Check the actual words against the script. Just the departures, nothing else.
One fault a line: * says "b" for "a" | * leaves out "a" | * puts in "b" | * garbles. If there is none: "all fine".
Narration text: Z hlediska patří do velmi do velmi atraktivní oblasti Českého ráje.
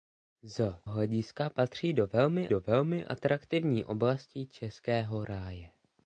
all fine